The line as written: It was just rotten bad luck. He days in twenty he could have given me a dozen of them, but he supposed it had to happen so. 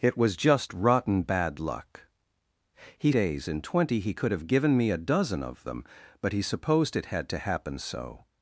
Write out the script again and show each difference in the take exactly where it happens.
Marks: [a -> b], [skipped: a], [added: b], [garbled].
It was just rotten bad luck. He days in twenty he could have given me a dozen of them, but he supposed it had to happen so.